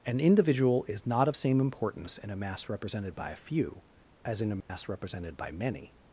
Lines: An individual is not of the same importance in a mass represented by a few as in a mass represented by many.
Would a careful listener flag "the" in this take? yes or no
yes